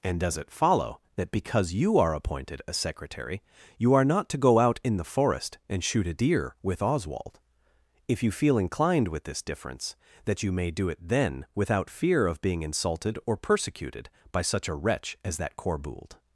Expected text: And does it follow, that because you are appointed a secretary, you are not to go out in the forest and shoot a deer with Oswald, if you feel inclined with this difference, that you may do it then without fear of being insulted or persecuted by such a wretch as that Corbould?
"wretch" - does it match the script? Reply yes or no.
yes